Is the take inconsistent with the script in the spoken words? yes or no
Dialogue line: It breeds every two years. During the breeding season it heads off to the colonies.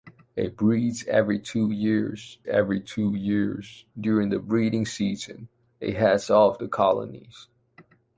yes